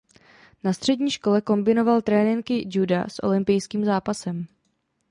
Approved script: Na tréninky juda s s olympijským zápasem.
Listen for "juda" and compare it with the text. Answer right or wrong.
right